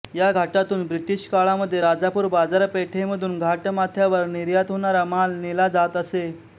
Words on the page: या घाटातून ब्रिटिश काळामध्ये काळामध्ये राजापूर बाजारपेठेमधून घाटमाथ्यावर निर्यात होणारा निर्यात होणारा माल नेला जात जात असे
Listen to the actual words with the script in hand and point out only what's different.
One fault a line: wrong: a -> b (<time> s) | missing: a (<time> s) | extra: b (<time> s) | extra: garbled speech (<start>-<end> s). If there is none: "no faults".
missing: काळामध्ये (1.8 s)
missing: निर्यात होणारा (5.0 s)
missing: जात (6.0 s)